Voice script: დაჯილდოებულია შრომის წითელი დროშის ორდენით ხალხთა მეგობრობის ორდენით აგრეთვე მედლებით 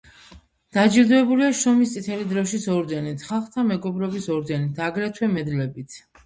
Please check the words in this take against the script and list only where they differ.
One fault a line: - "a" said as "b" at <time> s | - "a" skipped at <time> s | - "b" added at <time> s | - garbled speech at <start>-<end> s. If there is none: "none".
none